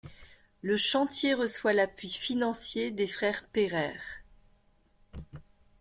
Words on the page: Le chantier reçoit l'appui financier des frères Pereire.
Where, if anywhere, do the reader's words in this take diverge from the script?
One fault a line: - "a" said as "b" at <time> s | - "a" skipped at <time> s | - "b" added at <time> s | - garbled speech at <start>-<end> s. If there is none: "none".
none